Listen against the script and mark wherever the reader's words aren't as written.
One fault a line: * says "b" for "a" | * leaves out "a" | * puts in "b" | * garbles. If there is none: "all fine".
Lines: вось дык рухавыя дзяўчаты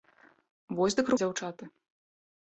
* leaves out "рухавыя"